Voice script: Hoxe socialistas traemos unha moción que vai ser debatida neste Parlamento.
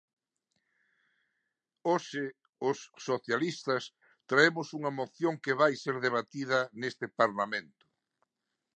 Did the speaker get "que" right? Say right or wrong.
right